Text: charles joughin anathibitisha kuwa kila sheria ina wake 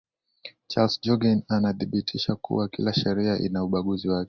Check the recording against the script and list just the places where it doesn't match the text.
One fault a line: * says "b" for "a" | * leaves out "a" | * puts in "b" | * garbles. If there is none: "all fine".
* puts in "ubaguzi"